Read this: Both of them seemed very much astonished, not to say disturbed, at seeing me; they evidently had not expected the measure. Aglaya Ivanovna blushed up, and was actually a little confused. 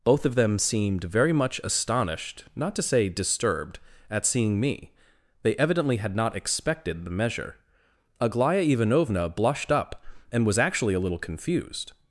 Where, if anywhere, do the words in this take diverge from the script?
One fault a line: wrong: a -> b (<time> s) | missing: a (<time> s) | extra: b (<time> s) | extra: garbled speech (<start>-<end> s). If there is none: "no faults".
no faults